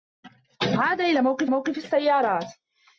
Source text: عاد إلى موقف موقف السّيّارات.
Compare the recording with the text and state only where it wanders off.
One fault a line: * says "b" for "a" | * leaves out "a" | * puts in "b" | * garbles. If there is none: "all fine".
all fine